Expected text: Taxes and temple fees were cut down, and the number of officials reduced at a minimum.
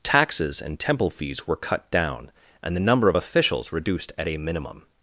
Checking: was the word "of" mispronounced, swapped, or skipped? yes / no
no